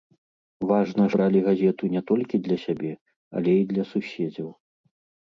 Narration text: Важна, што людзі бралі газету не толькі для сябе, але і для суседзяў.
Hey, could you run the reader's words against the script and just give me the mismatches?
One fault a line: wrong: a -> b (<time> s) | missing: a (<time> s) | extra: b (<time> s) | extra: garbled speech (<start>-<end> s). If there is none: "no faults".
missing: што людзі (1.1 s)